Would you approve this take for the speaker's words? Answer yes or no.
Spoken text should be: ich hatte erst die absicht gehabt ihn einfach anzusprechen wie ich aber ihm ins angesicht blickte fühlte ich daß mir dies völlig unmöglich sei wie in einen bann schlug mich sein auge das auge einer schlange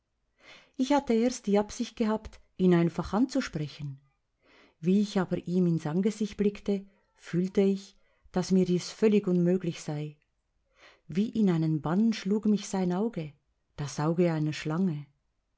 yes